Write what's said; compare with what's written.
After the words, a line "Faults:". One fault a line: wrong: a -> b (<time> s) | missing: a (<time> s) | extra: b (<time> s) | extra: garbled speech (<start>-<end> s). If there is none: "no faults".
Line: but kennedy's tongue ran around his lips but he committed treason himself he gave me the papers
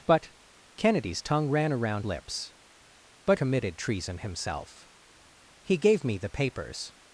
but kennedy's tongue ran around lips but committed treason himself he gave me the papers
Faults:
missing: his (2.0 s)
missing: he (3.4 s)